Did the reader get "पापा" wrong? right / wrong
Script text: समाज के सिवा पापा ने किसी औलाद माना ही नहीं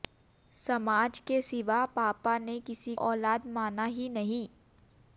right